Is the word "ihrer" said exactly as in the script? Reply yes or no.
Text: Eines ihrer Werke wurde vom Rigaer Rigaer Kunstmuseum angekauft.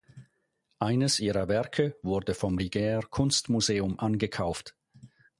yes